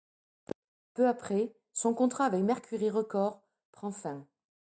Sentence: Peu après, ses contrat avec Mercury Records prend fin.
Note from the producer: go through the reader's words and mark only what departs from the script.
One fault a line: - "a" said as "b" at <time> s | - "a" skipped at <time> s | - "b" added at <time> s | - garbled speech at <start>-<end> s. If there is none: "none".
- "ses" said as "son" at 1.7 s